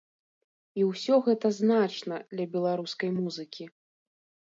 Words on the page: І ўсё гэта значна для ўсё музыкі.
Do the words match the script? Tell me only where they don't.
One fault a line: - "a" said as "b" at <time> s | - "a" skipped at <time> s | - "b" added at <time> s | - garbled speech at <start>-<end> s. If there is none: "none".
- "ўсё" said as "беларускай" at 2.5 s